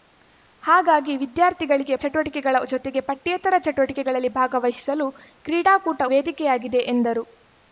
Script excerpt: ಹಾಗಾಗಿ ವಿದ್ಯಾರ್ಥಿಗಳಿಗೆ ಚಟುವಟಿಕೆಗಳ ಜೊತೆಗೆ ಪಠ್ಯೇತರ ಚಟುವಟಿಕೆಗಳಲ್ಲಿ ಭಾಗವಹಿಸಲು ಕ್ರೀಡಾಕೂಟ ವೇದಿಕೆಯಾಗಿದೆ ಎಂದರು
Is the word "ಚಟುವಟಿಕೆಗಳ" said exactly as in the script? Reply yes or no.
yes